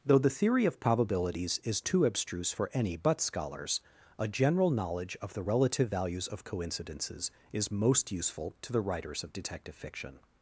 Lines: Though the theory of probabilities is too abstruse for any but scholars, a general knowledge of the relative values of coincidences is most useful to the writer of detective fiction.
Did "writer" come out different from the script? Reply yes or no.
yes